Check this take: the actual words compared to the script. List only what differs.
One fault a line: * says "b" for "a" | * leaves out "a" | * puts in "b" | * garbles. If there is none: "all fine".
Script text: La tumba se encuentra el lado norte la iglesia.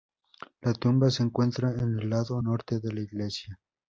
* puts in "en"
* puts in "de"